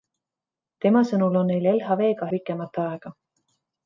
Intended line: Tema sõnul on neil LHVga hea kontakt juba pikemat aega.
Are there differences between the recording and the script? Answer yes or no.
yes